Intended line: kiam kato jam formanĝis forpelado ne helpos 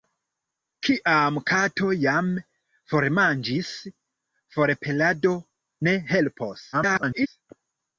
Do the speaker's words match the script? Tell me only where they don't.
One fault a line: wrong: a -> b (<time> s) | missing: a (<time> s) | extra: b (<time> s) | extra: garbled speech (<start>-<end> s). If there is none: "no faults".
extra: garbled speech (6.7-7.3 s)